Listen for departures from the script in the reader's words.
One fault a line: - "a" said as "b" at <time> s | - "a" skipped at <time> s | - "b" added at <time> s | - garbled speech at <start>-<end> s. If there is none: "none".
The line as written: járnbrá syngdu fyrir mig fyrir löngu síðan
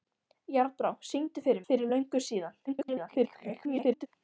- "mig" skipped at 1.6 s
- garbled speech at 2.7-4.1 s